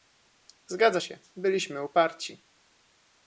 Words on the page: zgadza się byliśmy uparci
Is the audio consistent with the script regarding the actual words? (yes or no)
yes